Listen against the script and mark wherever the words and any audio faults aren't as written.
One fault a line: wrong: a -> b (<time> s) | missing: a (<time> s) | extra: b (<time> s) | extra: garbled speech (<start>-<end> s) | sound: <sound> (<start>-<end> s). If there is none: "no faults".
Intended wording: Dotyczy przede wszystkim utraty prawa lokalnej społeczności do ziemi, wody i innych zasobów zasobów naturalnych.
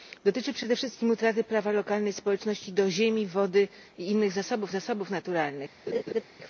sound: laugh (5.9-6.2 s)